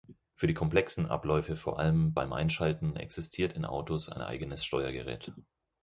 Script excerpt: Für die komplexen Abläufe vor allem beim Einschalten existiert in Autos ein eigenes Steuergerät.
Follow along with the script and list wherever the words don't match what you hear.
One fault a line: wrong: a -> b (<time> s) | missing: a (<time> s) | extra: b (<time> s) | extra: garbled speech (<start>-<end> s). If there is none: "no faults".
no faults